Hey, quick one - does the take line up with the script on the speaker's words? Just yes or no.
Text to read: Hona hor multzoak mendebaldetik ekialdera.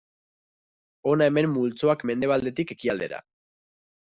no